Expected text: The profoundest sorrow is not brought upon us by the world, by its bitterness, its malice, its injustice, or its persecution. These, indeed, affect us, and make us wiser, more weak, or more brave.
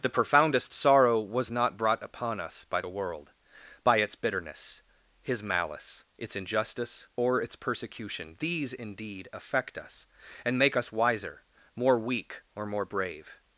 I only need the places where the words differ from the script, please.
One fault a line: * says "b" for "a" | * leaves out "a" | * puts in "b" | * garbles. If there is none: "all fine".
* says "was" for "is"
* says "his" for "its"